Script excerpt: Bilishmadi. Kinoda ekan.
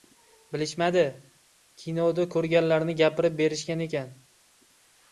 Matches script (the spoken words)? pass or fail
fail